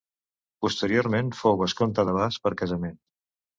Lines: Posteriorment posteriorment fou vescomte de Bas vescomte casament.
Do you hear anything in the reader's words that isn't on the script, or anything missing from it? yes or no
yes